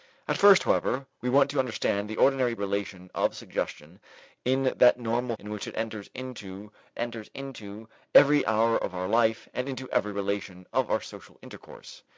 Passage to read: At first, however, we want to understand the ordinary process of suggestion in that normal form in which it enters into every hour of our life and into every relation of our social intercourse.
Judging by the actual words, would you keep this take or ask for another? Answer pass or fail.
fail